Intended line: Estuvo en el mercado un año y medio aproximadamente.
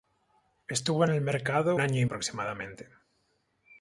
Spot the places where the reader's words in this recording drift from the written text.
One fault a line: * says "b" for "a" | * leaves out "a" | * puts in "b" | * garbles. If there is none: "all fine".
* leaves out "un"
* leaves out "medio"